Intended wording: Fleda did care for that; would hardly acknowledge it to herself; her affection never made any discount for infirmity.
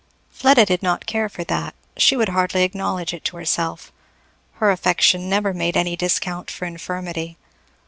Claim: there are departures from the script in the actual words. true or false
true